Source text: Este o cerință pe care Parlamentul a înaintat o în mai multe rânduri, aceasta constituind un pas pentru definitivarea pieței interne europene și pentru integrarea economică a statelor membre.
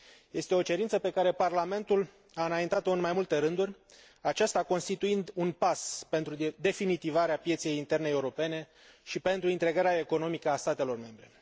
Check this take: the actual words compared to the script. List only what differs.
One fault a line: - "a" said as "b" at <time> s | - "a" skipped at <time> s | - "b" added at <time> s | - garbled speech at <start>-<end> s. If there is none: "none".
none